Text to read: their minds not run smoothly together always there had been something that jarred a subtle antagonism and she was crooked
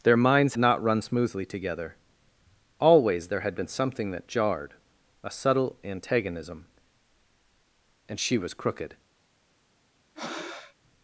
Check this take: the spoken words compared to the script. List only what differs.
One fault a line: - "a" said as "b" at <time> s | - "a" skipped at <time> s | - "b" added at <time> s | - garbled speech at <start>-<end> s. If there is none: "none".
none